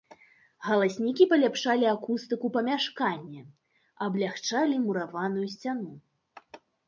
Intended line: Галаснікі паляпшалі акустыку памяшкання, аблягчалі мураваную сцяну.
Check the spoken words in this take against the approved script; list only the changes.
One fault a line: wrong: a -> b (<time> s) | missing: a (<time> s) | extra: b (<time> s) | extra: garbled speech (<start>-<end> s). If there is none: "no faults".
no faults